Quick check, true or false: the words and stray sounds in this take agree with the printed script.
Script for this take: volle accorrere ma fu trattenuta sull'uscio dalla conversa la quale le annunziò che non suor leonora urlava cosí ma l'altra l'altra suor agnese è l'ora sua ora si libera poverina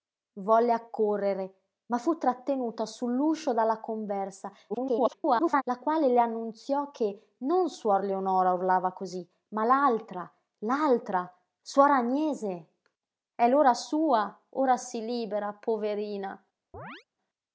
false